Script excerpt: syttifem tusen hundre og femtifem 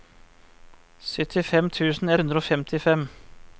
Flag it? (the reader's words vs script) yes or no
no